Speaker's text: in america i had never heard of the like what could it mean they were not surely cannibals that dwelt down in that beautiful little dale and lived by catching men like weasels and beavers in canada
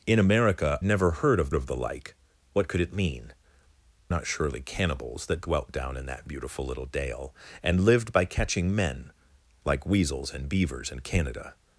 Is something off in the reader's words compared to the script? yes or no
yes